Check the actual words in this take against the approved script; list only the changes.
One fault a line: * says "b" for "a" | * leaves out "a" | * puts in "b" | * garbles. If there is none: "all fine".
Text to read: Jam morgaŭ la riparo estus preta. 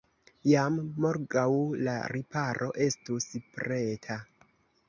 all fine